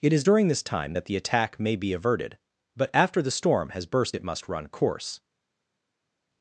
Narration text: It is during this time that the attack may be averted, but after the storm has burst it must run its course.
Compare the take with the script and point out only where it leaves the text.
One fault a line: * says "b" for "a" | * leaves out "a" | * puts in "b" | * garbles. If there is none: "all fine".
* leaves out "its"